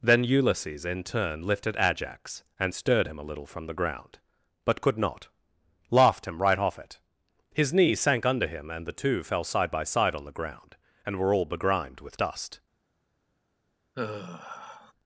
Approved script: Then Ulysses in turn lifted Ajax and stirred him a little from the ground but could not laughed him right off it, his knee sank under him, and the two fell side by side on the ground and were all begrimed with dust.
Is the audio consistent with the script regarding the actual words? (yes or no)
yes